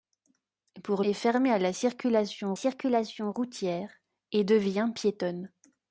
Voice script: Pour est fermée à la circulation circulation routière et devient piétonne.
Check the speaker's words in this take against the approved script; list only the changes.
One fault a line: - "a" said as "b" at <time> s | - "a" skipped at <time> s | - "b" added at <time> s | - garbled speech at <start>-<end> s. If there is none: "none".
none